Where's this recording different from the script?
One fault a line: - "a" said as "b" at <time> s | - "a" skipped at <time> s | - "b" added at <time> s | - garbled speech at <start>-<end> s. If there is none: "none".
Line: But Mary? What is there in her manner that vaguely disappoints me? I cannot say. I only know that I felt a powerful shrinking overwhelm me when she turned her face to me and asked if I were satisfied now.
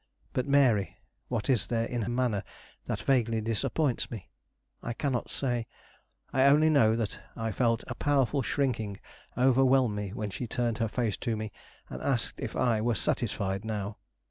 - "her" skipped at 2.0 s